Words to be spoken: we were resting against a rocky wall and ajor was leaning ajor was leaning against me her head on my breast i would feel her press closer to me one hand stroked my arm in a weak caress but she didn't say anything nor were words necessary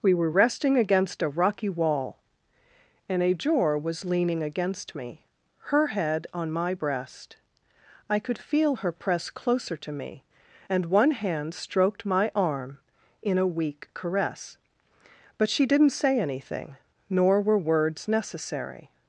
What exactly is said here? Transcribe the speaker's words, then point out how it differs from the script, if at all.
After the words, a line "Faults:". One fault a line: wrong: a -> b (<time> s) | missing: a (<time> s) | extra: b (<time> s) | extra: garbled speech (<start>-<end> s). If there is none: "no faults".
we were resting against a rocky wall and ajor was leaning against me her head on my breast i could feel her press closer to me and one hand stroked my arm in a weak caress but she didn't say anything nor were words necessary
Faults:
missing: ajor was leaning (4.4 s)
wrong: would -> could (8.2 s)
extra: and (10.7 s)